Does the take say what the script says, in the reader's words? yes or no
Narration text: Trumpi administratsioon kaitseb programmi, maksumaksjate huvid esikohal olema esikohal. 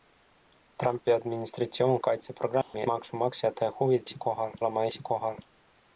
yes